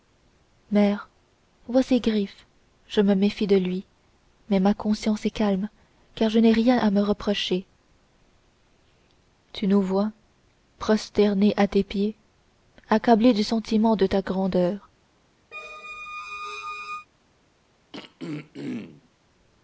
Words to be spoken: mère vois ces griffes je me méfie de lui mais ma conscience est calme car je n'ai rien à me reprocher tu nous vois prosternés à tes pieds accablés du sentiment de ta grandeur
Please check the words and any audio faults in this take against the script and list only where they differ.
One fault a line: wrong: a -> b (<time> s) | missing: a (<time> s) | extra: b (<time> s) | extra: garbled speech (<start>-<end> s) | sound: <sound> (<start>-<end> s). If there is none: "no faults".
sound: squeak (15.5-17.1 s)
sound: throat clearing (17.9-19.1 s)